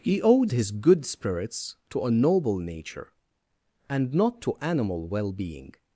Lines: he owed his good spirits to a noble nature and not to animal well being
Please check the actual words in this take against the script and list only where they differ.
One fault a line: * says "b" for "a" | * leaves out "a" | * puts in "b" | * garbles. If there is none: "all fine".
all fine